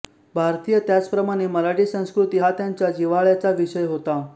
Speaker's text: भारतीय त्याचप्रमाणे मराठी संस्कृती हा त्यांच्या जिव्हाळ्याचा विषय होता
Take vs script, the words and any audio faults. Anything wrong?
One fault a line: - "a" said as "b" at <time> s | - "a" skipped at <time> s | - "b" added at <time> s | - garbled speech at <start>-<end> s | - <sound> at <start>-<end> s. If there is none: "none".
none